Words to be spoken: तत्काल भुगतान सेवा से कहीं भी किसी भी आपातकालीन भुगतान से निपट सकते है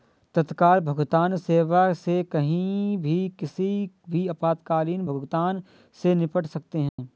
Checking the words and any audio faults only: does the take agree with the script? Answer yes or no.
no